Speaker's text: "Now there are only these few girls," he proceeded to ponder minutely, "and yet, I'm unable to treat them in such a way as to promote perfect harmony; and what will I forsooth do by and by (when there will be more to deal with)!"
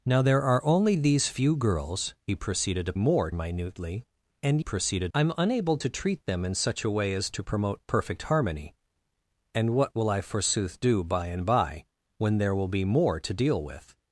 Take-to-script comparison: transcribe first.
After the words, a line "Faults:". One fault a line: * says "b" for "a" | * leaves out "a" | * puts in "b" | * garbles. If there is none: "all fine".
"Now there are only these few girls," he proceeded to more minutely, "and proceeded, I'm unable to treat them in such a way as to promote perfect harmony; and what will I forsooth do by and by (when there will be more to deal with)!"
Faults:
* says "more" for "ponder"
* says "proceeded" for "yet"